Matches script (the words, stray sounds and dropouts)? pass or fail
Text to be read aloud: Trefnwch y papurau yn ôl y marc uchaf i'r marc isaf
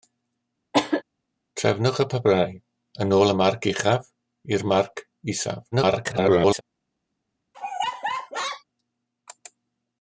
fail